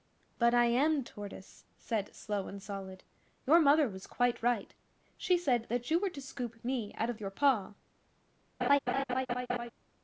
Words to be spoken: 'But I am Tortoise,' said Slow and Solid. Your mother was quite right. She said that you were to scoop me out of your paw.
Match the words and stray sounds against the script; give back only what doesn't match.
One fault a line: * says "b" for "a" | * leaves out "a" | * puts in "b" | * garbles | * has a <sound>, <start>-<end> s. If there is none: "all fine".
* has a laugh, 8.6-9.7 s